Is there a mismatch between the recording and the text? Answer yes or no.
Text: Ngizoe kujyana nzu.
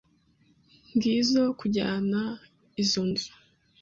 yes